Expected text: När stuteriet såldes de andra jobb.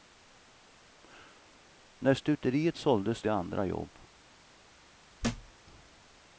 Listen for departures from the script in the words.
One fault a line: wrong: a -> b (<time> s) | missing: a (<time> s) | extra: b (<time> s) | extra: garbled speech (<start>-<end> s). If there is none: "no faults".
no faults